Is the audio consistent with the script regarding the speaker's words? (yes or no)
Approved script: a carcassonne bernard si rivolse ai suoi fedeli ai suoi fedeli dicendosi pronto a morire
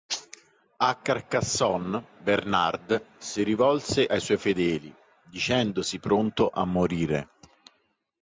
no